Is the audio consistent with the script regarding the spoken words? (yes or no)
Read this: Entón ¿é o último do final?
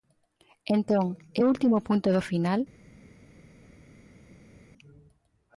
no